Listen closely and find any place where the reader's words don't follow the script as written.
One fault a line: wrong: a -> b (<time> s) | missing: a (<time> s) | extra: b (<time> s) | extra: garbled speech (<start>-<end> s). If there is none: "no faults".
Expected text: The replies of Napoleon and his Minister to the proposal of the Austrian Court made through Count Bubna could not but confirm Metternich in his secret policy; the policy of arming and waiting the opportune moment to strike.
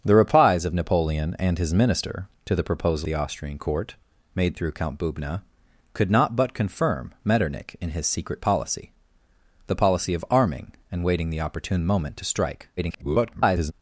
missing: of (3.1 s)
extra: garbled speech (12.8-13.7 s)